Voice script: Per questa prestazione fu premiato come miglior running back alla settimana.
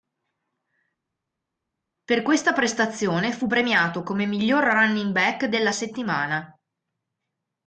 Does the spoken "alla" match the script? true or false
false